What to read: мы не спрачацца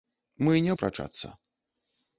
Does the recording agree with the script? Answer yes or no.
yes